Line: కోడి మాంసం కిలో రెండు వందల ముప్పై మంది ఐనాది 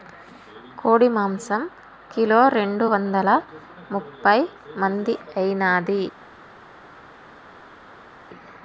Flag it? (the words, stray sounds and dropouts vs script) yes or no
no